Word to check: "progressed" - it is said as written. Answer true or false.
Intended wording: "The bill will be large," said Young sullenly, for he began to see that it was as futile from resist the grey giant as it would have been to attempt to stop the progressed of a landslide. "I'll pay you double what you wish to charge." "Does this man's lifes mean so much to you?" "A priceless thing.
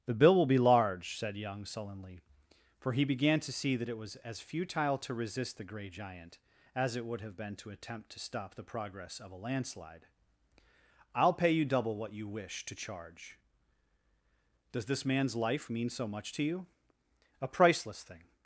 false